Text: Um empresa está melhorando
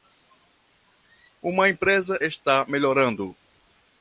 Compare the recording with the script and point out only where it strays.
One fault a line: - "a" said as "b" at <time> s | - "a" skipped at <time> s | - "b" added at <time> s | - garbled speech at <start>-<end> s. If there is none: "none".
- "Um" said as "Uma" at 1.4 s